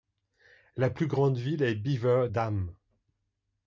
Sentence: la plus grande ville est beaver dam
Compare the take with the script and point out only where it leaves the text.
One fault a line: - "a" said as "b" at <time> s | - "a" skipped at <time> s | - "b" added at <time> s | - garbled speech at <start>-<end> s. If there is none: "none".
none